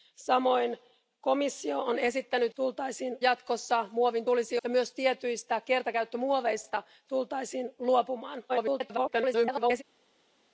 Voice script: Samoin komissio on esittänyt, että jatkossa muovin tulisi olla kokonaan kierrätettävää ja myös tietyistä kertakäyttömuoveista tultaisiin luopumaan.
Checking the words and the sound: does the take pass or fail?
fail